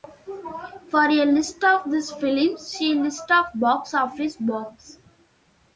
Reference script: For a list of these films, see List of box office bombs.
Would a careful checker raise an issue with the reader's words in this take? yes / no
no